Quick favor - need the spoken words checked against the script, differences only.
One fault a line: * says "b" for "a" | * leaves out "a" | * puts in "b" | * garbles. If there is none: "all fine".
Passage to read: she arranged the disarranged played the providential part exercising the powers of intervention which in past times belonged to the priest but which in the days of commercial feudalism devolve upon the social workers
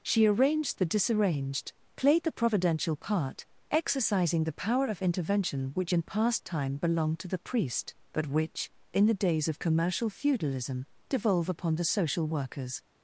* says "power" for "powers"
* says "time" for "times"